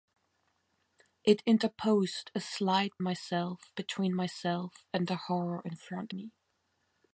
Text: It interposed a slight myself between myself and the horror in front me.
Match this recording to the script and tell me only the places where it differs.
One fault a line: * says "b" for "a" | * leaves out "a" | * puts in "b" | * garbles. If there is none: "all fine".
all fine